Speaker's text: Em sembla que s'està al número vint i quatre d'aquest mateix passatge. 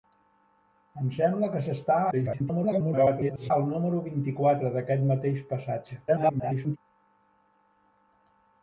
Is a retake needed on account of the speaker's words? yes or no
yes